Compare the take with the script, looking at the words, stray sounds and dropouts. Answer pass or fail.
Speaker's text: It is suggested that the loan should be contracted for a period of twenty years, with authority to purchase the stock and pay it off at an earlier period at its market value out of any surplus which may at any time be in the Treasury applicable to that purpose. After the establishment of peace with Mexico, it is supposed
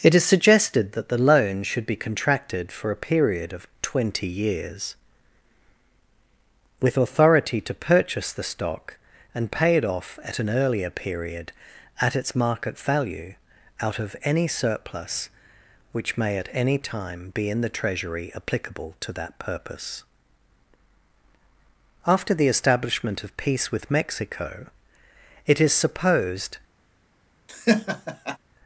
fail